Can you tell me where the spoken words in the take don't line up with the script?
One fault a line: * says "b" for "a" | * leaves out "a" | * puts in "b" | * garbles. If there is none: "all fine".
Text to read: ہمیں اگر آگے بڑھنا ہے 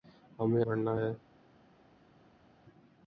* leaves out "اگر آگے"